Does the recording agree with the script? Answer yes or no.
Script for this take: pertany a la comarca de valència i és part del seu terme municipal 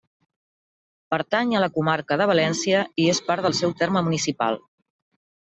yes